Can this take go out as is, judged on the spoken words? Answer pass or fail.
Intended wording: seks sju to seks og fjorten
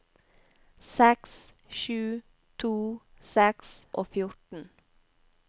pass